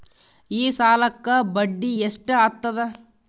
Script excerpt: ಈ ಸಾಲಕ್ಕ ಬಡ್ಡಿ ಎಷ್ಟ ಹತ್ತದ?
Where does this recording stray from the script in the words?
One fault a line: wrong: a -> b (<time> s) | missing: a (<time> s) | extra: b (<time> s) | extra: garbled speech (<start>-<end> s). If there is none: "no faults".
no faults